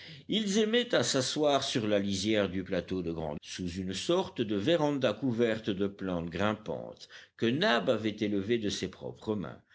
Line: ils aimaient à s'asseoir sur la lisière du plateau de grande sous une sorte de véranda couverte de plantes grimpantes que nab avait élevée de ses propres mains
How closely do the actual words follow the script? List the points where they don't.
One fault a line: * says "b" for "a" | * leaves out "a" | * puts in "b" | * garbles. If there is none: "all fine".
all fine